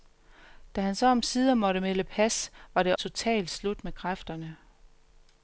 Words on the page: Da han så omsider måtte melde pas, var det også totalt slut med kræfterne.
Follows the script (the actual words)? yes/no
no